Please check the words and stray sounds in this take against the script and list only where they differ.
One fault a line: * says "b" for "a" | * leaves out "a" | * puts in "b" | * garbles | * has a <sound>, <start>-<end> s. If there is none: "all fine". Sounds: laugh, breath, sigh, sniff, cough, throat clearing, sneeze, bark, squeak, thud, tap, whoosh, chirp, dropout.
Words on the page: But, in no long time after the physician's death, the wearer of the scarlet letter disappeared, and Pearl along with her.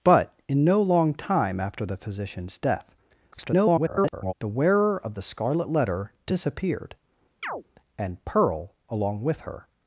* garbles
* has a chirp, 7.4-7.6 s